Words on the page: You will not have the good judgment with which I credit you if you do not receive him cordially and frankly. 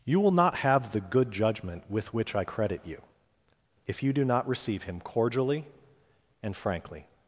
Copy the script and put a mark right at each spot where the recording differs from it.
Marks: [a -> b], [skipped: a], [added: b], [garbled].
You will not have the good judgment with which I credit you if you do not receive him cordially and frankly.